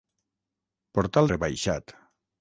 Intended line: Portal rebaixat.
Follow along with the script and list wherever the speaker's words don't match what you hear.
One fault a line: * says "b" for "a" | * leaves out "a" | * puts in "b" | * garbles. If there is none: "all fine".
all fine